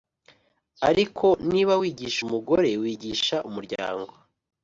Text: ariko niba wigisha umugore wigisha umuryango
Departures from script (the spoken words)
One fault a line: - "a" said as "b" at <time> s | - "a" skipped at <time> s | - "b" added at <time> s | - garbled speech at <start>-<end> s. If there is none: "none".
none